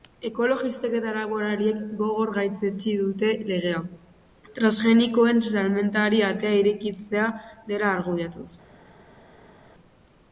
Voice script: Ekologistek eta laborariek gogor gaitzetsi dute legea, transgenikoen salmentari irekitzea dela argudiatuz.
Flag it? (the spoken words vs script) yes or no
yes